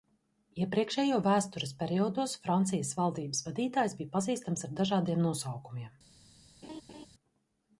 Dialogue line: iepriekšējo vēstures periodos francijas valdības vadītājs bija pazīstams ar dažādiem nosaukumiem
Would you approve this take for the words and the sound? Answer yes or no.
no